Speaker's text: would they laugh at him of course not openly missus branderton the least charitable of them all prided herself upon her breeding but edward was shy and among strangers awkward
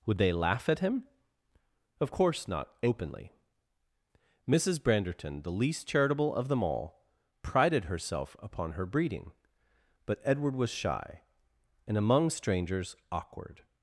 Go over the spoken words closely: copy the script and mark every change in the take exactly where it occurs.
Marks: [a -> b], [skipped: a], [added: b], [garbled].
would they laugh at him of course not openly missus branderton the least charitable of them all prided herself upon her breeding but edward was shy and among strangers awkward